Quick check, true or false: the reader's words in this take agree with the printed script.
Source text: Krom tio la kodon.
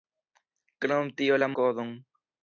true